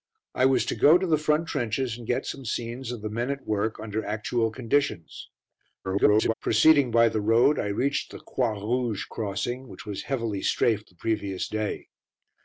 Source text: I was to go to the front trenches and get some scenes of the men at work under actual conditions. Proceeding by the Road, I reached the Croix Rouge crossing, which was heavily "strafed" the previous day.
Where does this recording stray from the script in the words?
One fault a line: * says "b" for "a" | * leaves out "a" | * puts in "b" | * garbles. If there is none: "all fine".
* garbles